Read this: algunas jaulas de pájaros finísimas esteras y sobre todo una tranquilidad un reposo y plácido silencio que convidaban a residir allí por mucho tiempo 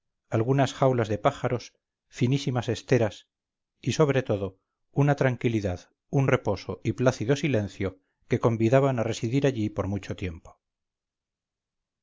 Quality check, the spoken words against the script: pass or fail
pass